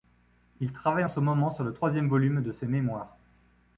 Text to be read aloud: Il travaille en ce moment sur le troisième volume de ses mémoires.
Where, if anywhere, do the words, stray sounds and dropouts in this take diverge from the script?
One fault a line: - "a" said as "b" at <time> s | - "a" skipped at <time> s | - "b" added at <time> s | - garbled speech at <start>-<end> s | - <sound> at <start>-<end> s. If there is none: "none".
none